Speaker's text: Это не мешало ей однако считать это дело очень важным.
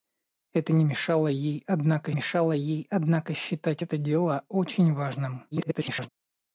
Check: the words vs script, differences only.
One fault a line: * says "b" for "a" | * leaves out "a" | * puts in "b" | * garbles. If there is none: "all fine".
* puts in "мешало ей однако"
* garbles